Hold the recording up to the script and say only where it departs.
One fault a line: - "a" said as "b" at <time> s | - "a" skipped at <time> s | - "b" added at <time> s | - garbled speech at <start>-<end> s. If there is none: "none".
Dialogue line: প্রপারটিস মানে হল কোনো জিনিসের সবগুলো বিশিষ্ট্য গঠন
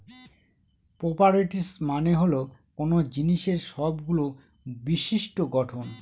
none